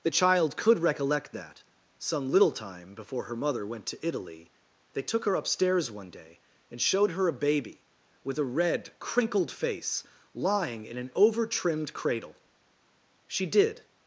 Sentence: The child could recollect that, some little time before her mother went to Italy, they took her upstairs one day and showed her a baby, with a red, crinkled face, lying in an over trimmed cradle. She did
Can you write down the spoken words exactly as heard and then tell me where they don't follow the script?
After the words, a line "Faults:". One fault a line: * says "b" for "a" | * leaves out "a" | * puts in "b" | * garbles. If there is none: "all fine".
The child could recollect that, some little time before her mother went to Italy, they took her upstairs one day and showed her a baby, with a red, crinkled face, lying in an over trimmed cradle. She did
Faults:
all fine